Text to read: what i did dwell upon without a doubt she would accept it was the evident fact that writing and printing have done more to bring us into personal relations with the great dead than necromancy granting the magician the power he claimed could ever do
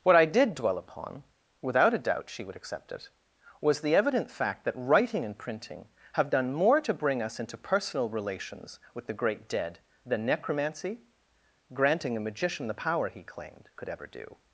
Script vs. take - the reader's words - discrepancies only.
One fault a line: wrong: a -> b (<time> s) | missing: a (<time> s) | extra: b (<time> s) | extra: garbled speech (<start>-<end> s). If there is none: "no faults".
wrong: the -> a (12.2 s)